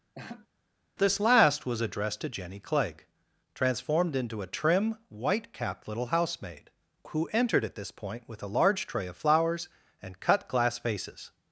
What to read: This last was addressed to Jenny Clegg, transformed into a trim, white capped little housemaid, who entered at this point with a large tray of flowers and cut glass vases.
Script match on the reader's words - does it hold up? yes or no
yes